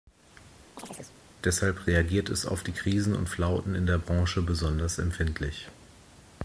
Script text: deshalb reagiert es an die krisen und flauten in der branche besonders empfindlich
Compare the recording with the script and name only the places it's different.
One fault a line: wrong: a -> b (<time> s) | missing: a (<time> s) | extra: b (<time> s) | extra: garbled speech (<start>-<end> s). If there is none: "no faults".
wrong: an -> auf (2.5 s)